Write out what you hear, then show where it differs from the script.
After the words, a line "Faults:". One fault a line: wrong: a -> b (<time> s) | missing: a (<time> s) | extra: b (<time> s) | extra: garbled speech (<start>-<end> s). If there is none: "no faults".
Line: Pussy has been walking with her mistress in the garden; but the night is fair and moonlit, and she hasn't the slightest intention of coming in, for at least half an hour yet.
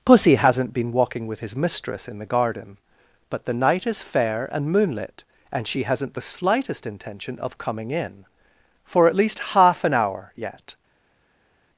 Pussy hasn't been walking with his mistress in the garden; but the night is fair and moonlit, and she hasn't the slightest intention of coming in, for at least half an hour yet.
Faults:
wrong: has -> hasn't (0.3 s)
wrong: her -> his (1.4 s)